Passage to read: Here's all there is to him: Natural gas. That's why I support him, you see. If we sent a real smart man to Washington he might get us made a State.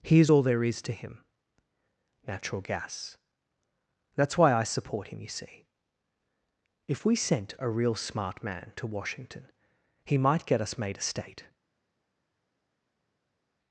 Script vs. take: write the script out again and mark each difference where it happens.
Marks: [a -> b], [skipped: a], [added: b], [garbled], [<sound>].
Here's all there is to him: Natural gas. That's why I support him, you see. If we sent a real smart man to Washington he might get us made a State.